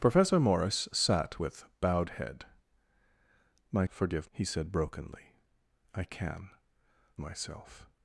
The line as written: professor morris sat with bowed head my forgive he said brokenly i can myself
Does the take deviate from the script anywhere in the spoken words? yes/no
no